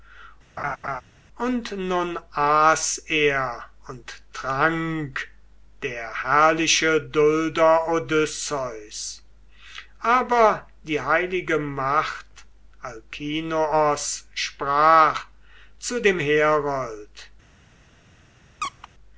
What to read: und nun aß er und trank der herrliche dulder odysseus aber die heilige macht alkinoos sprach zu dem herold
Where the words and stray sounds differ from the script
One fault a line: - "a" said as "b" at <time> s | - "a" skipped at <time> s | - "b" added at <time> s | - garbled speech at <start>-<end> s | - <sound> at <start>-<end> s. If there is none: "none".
- laugh at 0.6-1.0 s
- squeak at 18.6-18.9 s